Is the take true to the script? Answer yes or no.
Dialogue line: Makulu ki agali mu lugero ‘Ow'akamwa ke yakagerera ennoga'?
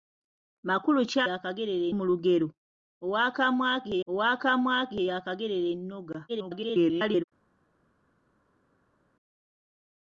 no